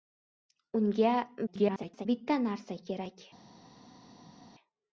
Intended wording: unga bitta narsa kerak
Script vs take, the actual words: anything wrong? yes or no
yes